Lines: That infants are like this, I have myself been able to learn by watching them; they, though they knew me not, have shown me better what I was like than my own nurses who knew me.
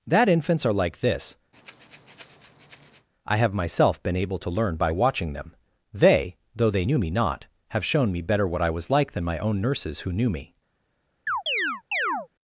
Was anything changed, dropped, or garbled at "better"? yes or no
no